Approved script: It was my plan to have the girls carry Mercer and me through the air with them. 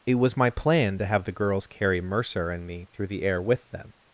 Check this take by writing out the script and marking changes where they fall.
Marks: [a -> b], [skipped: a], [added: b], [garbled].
It was my plan to have the girls carry Mercer and me through the air with them.